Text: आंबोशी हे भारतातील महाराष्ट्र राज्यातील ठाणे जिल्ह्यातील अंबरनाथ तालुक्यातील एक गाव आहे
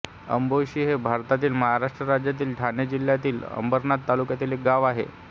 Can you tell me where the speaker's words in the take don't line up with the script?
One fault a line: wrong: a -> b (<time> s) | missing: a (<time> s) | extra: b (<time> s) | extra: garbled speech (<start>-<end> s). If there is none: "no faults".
no faults